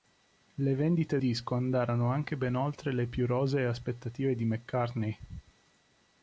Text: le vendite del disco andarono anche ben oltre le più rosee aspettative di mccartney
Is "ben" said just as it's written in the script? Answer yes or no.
yes